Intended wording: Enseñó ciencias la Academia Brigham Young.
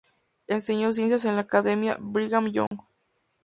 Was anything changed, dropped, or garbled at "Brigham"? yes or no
no